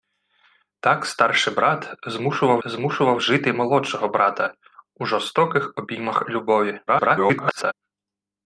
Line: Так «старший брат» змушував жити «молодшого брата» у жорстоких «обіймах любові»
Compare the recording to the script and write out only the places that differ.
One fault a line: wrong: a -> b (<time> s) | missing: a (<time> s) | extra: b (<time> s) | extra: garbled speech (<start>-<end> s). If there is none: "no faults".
extra: змушував (2.7 s)
extra: garbled speech (6.9-7.7 s)